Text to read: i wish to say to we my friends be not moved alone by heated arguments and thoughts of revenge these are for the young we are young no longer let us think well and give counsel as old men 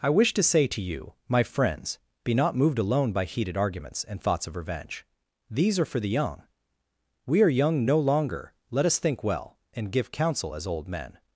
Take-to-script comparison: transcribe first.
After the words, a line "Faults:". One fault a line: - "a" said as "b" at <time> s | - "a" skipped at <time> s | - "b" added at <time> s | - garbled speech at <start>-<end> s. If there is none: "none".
i wish to say to you my friends be not moved alone by heated arguments and thoughts of revenge these are for the young we are young no longer let us think well and give counsel as old men
Faults:
- "we" said as "you" at 0.8 s